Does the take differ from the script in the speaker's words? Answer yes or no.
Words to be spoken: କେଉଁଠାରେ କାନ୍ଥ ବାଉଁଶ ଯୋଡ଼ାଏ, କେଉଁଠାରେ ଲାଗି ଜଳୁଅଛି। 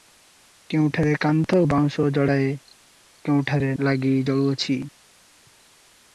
no